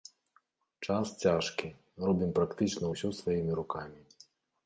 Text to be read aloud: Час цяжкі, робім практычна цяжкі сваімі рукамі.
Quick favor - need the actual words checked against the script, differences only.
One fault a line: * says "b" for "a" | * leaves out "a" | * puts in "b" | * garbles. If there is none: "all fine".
* says "ўсё" for "цяжкі"